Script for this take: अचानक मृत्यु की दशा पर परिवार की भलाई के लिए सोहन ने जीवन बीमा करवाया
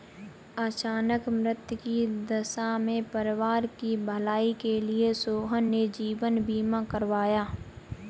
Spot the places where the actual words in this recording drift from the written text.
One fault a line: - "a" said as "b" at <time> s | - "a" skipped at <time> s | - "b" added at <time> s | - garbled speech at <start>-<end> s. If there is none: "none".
- "पर" said as "में" at 2.8 s